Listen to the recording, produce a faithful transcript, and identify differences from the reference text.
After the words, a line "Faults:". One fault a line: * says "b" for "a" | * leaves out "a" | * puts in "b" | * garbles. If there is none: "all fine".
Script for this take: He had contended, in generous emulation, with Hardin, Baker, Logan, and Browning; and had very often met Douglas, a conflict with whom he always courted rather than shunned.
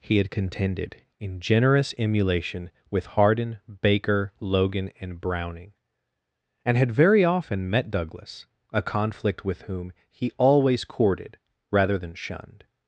He had contended, in generous emulation, with Hardin, Baker, Logan, and Browning; and had very often met Douglas, a conflict with whom he always courted rather than shunned.
Faults:
all fine